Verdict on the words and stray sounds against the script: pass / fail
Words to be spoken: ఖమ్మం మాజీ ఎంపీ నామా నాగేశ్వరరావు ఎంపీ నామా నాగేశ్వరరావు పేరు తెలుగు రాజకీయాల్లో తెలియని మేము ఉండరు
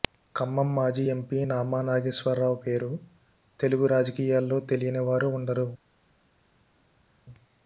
fail